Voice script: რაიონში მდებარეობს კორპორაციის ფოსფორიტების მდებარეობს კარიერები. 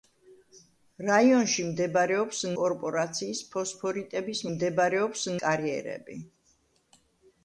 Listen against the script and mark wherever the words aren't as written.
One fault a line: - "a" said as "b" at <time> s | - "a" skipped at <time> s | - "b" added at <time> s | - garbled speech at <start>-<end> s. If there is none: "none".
none